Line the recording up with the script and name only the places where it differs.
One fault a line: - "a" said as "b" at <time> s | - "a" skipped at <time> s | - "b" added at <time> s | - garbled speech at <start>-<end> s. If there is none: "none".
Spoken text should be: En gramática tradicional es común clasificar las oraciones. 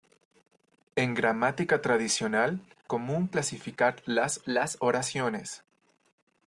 - "es" skipped at 2.6 s
- "las" added at 4.5 s